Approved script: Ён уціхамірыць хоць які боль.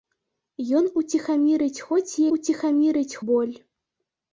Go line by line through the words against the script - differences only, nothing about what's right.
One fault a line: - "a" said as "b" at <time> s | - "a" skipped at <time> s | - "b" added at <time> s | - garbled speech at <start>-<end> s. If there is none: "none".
- "які" said as "уціхамірыць" at 2.4 s